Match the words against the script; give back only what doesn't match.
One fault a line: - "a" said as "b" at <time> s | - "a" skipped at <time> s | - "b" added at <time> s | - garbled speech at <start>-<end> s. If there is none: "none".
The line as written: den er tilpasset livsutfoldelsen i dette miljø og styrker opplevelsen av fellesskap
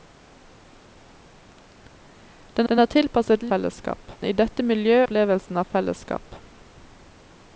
- "den" added at 2.7 s
- "livsutfoldelsen" said as "fellesskap" at 3.5 s
- "og styrker" skipped at 5.0 s